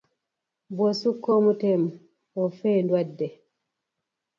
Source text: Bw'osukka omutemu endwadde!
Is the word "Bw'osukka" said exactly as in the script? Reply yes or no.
yes